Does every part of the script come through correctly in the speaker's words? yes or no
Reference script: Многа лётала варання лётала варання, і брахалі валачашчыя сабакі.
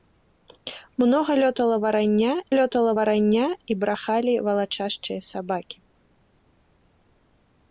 yes